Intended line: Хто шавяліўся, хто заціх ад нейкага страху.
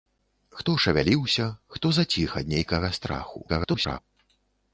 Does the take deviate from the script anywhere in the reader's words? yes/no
yes